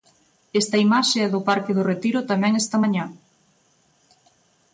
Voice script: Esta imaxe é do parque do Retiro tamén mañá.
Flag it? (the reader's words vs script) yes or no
yes